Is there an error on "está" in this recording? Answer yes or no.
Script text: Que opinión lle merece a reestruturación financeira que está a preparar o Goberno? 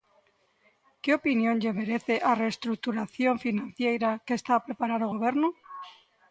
no